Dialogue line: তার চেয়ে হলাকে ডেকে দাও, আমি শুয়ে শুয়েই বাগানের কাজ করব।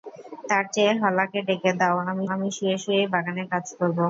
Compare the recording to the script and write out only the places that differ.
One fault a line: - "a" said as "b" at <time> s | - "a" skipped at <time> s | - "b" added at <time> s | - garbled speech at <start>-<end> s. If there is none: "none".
- "আমি" added at 2.3 s